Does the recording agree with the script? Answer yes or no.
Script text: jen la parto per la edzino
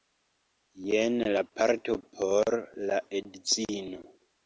no